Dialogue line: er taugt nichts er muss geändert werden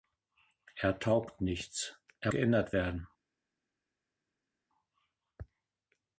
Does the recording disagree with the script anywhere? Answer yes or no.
yes